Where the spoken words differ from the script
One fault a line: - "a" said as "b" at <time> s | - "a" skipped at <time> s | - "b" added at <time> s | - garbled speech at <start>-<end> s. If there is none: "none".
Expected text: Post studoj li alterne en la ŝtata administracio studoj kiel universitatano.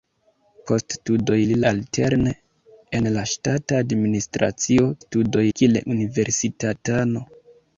none